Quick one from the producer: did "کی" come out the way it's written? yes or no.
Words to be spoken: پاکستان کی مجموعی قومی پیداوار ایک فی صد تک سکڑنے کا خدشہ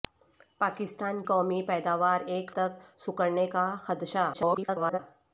no